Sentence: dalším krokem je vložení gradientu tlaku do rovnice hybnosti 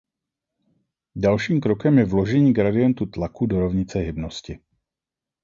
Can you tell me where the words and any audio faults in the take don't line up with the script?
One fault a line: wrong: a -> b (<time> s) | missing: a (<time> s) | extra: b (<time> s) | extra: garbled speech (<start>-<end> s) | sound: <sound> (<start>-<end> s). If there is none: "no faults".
no faults